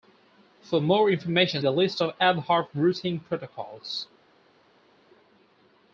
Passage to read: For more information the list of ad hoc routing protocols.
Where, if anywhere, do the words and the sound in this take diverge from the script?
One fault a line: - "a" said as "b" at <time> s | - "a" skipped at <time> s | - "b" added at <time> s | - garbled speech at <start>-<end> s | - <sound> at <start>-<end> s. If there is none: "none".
none